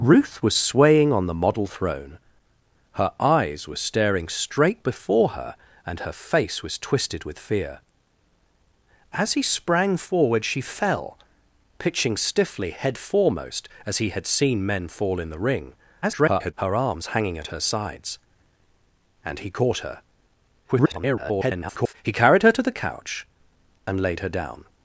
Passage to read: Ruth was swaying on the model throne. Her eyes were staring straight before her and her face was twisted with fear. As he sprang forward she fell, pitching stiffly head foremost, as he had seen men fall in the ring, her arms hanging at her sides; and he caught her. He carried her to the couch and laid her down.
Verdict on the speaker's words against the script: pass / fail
fail